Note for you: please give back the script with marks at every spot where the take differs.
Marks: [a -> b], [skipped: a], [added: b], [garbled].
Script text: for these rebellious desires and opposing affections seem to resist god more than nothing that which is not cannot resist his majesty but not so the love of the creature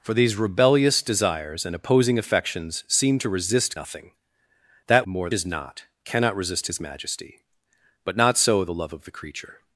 for these rebellious desires and opposing affections seem to resist [skipped: god more than] nothing that [which -> more] is not cannot resist his majesty but not so the love of the creature